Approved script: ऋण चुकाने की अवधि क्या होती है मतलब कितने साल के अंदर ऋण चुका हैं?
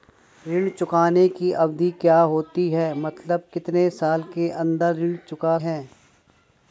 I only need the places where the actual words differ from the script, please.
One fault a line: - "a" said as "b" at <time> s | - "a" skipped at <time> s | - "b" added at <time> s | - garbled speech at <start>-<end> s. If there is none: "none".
none